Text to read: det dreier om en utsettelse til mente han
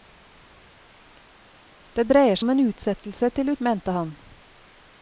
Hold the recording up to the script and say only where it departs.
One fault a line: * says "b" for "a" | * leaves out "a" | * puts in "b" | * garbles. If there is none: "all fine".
all fine